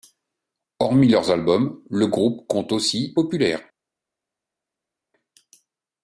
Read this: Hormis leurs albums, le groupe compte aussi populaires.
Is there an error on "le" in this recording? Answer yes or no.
no